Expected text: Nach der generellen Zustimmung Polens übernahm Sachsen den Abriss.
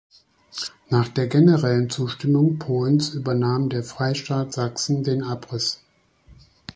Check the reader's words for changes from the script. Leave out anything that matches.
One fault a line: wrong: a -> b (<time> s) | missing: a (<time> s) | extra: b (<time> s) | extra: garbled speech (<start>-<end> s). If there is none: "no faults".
extra: der Freistaat (3.7 s)